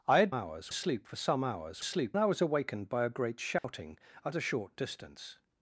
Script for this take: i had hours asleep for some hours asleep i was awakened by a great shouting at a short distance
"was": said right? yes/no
yes